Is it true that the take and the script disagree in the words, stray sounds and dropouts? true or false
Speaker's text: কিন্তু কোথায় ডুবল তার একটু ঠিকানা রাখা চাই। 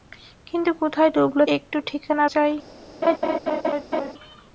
true